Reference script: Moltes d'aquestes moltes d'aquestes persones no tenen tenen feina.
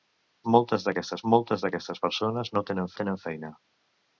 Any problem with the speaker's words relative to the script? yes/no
no